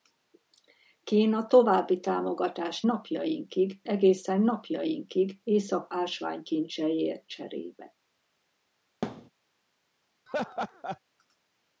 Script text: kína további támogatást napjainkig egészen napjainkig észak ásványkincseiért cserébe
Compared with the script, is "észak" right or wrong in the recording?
right